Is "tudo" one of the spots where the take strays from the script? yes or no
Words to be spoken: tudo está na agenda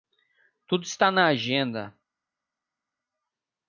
no